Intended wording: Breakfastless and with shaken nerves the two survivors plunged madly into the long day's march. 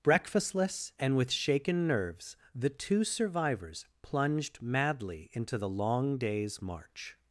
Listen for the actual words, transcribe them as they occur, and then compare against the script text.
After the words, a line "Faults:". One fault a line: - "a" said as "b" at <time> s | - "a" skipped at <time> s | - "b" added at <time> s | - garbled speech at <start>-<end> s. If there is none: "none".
Breakfastless and with shaken nerves the two survivors plunged madly into the long day's march.
Faults:
none